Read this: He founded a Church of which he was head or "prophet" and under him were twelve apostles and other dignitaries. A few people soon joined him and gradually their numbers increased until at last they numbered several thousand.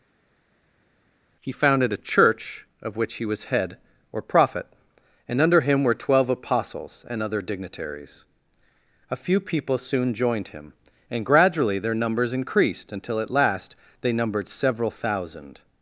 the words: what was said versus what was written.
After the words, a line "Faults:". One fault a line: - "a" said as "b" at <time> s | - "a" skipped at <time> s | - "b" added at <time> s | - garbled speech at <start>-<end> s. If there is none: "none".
He founded a Church of which he was head or "prophet" and under him were twelve apostles and other dignitaries. A few people soon joined him and gradually their numbers increased until at last they numbered several thousand.
Faults:
none